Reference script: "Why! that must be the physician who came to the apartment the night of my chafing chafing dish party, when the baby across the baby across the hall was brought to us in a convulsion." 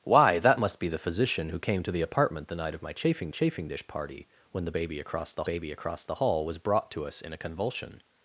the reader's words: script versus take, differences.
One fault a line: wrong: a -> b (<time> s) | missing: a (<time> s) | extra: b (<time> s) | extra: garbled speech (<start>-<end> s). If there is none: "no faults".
no faults